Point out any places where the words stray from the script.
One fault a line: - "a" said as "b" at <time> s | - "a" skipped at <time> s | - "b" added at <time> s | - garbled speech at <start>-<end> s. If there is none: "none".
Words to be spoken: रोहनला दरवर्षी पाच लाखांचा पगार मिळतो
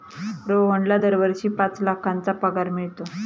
none